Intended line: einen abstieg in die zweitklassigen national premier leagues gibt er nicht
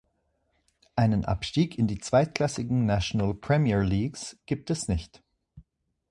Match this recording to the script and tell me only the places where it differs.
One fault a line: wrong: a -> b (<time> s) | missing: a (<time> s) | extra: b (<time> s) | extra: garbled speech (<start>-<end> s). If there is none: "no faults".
wrong: er -> es (4.7 s)